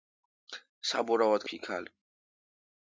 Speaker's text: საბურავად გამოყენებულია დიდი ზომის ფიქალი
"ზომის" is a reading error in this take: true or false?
true